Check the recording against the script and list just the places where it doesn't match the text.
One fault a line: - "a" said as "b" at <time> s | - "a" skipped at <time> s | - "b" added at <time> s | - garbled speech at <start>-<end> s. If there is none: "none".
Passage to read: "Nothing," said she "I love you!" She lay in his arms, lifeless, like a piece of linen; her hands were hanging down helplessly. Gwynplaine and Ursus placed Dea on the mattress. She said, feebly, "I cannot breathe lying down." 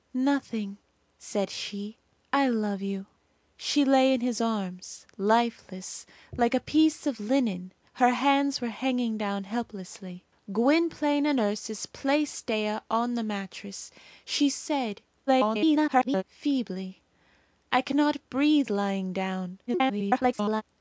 - garbled speech at 15.3-16.2 s
- garbled speech at 19.7-20.6 s